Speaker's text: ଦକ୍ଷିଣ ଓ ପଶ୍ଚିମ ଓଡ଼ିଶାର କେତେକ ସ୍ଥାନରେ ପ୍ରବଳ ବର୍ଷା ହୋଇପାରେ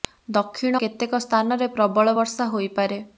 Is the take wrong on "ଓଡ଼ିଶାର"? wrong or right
wrong